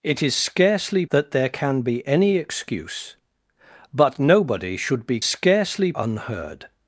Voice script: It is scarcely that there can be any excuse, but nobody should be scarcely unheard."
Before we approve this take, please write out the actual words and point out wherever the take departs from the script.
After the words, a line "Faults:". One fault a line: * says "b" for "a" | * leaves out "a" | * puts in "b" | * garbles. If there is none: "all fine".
It is scarcely that there can be any excuse, but nobody should be scarcely unheard."
Faults:
all fine